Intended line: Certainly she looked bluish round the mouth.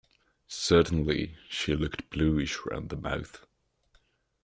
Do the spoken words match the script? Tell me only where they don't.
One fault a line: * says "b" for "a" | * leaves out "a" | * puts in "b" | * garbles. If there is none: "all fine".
all fine